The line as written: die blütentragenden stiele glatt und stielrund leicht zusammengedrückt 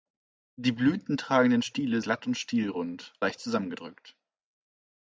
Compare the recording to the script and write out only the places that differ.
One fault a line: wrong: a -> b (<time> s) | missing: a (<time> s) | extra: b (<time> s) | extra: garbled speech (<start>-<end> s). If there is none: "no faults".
no faults